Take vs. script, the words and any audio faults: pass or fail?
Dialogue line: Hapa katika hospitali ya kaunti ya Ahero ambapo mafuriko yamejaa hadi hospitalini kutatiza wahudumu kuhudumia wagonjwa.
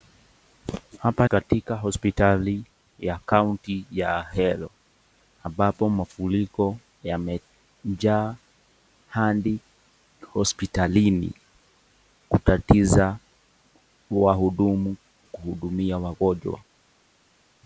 pass